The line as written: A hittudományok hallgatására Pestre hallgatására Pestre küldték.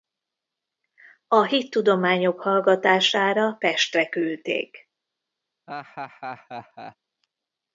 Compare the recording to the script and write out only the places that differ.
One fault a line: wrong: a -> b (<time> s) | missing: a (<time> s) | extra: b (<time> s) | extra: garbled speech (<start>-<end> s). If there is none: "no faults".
missing: hallgatására Pestre (4.1 s)